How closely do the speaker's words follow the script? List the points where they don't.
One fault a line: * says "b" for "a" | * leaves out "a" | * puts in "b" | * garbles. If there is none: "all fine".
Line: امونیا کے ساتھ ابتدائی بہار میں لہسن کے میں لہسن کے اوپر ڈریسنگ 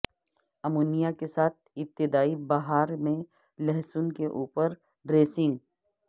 * leaves out "میں لہسن کے"